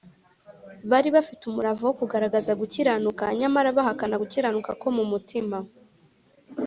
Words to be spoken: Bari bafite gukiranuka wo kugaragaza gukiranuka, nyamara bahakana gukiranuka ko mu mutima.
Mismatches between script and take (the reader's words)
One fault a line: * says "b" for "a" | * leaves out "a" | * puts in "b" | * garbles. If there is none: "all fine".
* says "umurava" for "gukiranuka"